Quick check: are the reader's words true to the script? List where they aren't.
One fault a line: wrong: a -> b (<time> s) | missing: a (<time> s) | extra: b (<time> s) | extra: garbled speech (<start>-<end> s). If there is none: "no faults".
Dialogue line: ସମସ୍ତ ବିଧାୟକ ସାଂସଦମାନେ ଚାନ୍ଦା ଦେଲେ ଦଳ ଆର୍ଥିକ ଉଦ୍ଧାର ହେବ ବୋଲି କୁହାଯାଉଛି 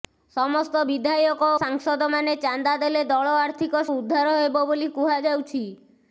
no faults